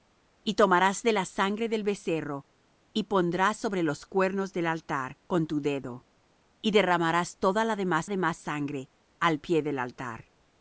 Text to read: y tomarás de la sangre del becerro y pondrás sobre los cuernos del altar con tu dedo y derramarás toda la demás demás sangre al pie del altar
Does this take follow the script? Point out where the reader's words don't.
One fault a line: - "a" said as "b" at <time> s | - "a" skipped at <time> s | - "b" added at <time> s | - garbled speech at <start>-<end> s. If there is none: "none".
none